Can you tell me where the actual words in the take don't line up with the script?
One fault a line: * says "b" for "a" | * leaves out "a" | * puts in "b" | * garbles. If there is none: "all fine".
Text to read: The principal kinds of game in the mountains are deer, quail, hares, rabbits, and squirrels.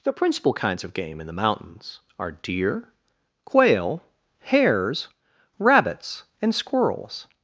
all fine